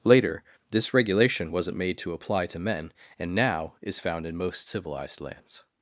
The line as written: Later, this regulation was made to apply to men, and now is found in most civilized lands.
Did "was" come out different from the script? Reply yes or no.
yes